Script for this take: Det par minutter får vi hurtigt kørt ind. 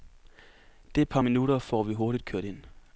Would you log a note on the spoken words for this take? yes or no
no